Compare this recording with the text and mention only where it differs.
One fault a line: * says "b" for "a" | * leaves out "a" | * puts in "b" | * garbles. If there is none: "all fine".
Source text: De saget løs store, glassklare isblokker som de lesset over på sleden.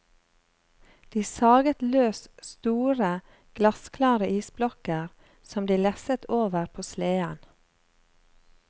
all fine